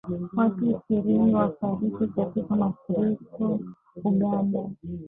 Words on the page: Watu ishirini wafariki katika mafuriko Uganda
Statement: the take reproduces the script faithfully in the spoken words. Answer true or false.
true